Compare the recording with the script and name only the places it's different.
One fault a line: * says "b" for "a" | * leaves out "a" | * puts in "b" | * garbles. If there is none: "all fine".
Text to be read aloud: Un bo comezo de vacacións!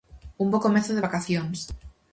all fine